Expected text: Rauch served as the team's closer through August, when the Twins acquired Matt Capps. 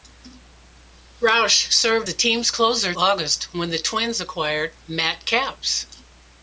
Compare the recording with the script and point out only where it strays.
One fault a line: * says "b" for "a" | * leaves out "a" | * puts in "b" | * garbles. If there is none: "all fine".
* leaves out "as"
* leaves out "through"